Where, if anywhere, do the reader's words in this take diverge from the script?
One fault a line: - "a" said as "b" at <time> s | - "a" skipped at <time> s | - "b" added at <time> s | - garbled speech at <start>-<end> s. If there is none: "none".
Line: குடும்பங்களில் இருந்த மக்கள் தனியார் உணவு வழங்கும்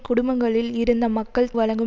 - "தனியார் உணவு" skipped at 1.5 s